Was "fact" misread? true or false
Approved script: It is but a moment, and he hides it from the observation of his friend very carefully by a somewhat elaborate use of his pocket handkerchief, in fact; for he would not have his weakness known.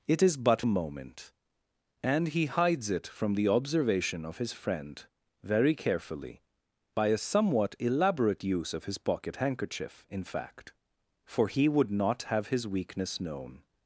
false